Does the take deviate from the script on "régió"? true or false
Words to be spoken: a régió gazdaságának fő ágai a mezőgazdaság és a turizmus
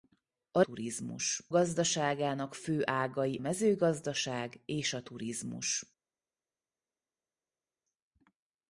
true